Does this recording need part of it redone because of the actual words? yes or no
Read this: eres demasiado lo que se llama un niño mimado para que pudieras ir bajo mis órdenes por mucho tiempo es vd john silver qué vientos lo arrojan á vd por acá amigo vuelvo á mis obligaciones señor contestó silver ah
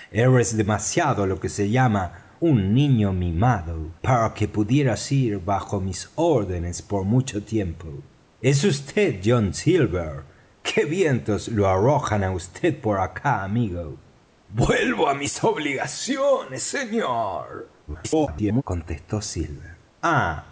yes